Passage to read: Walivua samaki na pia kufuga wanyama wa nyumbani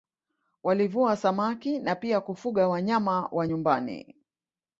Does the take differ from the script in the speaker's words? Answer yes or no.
no